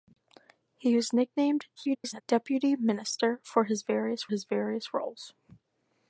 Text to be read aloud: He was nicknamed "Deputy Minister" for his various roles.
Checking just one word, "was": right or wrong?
right